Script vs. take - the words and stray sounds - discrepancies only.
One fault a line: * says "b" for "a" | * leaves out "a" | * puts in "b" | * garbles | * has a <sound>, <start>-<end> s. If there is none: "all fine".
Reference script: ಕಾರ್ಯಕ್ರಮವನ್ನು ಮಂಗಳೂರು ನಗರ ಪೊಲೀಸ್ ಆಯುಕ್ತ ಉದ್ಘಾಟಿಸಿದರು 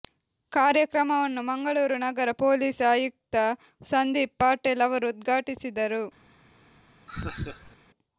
* puts in "ಸಂದೀಪ್ ಪಾಟೀಲ್ ಅವರು"
* has a laugh, 7.1-7.8 s